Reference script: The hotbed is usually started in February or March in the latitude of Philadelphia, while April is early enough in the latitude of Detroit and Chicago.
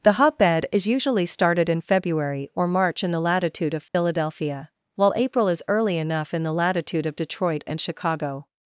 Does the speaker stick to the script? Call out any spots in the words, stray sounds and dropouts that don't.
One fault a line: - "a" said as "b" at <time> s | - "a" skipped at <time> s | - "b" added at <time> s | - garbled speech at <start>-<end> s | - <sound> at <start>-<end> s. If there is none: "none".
- dropout at 3.9-3.9 s